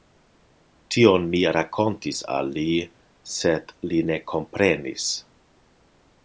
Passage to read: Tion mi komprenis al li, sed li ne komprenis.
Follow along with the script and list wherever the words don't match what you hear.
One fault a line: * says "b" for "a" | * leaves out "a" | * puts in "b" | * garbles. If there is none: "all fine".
* says "rakontis" for "komprenis"